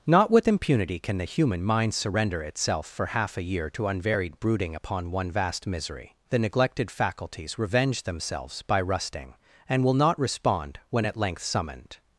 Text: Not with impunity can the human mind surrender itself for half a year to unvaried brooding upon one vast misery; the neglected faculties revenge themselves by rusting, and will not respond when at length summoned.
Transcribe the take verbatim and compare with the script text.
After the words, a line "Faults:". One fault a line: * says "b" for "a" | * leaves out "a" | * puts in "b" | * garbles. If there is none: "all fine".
Not with impunity can the human mind surrender itself for half a year to unvaried brooding upon one vast misery; the neglected faculties revenge themselves by rusting, and will not respond when at length summoned.
Faults:
all fine